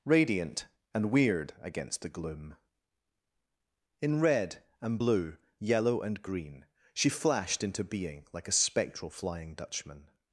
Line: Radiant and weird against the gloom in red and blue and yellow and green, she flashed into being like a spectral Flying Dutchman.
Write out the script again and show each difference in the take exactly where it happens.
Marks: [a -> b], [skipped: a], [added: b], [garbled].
Radiant and weird against the gloom in red and blue [skipped: and] yellow and green, she flashed into being like a spectral Flying Dutchman.